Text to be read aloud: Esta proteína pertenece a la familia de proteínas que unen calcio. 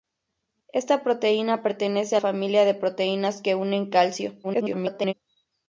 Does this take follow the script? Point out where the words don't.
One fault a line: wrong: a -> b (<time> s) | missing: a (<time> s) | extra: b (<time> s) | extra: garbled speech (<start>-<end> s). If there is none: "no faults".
missing: la (2.2 s)
extra: garbled speech (4.4-5.1 s)